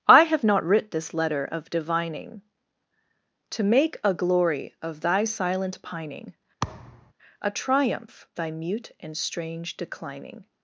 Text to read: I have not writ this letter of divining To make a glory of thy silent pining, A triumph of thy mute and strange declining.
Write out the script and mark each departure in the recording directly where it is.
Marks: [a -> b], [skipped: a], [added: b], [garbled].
I have not writ this letter of divining To make a glory of thy silent pining, A triumph [skipped: of] thy mute and strange declining.